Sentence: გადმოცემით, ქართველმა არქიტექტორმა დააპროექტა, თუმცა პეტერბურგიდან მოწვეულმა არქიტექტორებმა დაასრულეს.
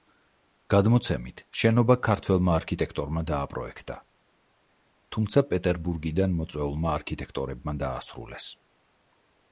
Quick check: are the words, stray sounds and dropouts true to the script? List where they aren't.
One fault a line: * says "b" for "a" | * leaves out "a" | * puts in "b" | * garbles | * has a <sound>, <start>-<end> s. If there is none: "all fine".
* puts in "შენობა"